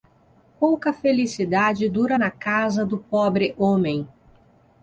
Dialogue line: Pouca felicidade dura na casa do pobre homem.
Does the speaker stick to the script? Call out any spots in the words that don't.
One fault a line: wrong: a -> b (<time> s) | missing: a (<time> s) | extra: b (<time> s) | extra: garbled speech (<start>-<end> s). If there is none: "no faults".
no faults